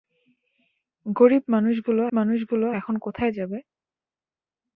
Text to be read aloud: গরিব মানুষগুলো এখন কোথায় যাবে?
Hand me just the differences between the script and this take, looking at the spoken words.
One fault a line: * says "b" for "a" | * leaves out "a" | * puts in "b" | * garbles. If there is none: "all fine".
* puts in "মানুষগুলো"